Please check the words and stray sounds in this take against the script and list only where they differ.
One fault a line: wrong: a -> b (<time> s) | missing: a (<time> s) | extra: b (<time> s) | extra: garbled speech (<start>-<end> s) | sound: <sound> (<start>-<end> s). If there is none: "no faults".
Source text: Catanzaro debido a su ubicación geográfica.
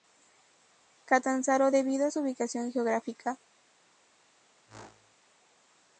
sound: whoosh (4.7-5.2 s)